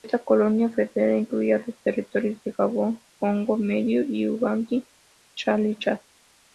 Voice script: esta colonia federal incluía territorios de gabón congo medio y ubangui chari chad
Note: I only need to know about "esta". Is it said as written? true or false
true